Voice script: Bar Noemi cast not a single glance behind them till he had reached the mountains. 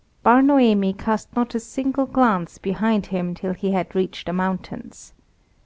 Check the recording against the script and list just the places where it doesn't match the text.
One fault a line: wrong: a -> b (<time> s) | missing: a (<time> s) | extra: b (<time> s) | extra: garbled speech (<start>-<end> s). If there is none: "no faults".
wrong: them -> him (3.0 s)